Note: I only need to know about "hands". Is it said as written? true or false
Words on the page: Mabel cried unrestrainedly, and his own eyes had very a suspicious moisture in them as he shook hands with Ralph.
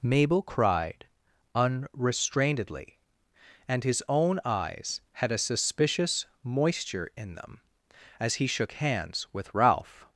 true